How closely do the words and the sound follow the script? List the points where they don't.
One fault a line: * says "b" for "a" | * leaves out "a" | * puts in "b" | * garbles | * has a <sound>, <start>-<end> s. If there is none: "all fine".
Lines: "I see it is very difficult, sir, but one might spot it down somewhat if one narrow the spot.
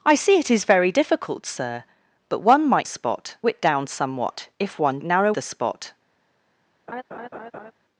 * has a laugh, 6.9-7.7 s